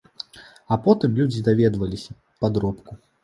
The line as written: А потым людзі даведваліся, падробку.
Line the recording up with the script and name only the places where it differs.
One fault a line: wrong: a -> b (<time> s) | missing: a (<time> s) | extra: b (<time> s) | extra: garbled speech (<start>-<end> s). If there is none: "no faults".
no faults